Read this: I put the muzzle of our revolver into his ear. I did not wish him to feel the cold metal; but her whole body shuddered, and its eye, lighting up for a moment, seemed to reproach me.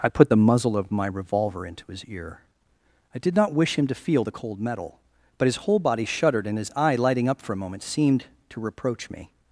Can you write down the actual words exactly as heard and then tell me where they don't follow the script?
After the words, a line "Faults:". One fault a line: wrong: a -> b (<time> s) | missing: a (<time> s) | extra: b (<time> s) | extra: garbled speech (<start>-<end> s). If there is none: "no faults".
I put the muzzle of my revolver into his ear. I did not wish him to feel the cold metal; but his whole body shuddered, and his eye, lighting up for a moment, seemed to reproach me.
Faults:
wrong: our -> my (0.9 s)
wrong: her -> his (5.4 s)
wrong: its -> his (6.6 s)